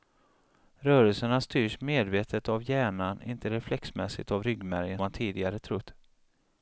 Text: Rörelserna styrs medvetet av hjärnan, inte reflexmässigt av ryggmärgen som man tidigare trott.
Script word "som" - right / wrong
wrong